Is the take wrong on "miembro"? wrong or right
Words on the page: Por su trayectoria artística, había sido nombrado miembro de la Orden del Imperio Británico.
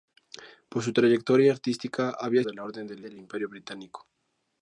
wrong